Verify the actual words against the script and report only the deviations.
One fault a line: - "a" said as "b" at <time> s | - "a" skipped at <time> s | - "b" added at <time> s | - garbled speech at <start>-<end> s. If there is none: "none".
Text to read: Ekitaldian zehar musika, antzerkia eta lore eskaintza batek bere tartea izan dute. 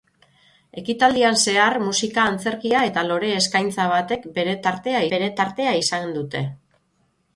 - "bere tartea" added at 5.1 s